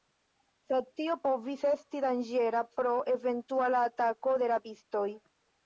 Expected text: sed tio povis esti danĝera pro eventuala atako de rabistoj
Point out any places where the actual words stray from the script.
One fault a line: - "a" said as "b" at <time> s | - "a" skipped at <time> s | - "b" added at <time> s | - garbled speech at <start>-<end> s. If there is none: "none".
none